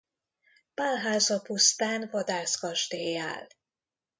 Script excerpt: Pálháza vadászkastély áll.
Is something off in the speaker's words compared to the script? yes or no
yes